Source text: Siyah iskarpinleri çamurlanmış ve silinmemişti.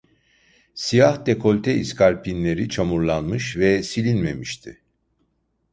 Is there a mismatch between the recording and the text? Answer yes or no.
yes